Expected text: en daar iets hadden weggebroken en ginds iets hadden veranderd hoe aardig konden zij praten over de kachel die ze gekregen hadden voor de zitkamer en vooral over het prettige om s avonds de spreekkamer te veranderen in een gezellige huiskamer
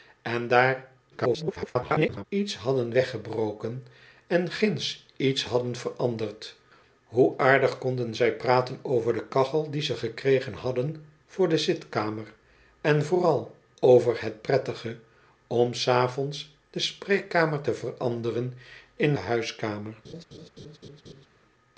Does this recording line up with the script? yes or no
no